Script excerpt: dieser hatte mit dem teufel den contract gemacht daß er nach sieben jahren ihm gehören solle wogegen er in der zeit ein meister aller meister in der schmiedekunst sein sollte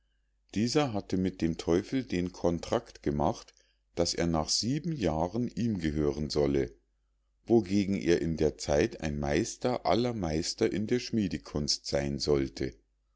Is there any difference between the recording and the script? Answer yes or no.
no